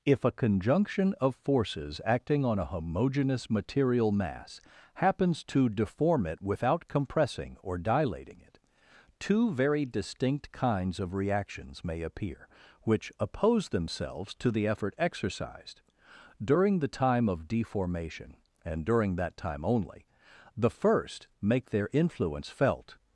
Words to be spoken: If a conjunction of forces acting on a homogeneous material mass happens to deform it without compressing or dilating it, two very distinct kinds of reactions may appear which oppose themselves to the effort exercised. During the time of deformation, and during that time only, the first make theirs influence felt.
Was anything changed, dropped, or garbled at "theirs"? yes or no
yes